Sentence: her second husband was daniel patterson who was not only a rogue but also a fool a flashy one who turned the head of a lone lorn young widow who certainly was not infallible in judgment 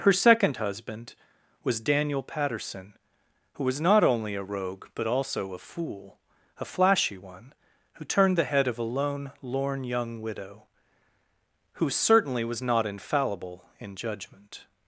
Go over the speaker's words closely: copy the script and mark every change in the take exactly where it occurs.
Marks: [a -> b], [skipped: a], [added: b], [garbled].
her second husband was daniel patterson who was not only a rogue but also a fool a flashy one who turned the head of a lone lorn young widow who certainly was not infallible in judgment